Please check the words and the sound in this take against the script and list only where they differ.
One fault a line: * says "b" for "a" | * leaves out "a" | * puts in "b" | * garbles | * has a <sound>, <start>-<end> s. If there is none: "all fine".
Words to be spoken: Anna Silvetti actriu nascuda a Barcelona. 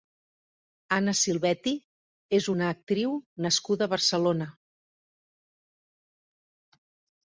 * puts in "és una"